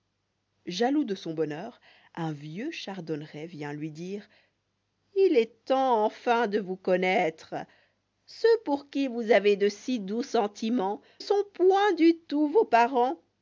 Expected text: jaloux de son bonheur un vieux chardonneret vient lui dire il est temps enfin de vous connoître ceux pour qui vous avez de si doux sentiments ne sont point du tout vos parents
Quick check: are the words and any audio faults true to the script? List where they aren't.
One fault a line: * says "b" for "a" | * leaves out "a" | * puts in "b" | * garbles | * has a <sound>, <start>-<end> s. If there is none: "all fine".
* leaves out "ne"